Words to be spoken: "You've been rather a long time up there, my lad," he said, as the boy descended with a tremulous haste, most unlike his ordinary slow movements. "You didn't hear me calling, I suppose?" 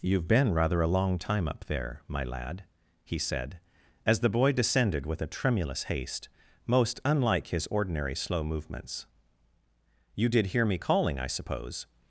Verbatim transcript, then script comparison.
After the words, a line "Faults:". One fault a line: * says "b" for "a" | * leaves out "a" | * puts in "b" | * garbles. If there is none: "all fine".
"You've been rather a long time up there, my lad," he said, as the boy descended with a tremulous haste, most unlike his ordinary slow movements. "You did hear me calling, I suppose?"
Faults:
* says "did" for "didn't"